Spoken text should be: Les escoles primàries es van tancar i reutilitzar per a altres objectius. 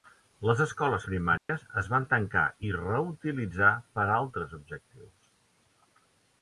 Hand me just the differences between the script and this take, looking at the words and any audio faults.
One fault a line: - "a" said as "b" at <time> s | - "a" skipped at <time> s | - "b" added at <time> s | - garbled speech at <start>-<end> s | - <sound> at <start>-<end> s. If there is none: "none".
- dropout at 1.4-1.5 s